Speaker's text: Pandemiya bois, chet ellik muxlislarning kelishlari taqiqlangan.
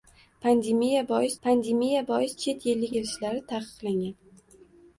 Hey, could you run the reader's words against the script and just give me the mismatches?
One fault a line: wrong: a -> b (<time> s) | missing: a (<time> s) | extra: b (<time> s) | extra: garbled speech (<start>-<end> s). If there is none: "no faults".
extra: pandemiya bois (1.5 s)
missing: muxlislarning (2.9 s)